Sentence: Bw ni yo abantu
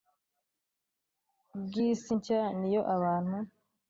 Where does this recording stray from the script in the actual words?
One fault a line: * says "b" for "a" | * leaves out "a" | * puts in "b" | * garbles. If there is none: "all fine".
* puts in "isi nshya"